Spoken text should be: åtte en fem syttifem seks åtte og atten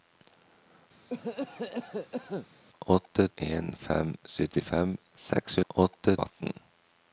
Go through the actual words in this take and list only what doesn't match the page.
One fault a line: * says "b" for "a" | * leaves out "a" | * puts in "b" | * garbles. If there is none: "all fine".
all fine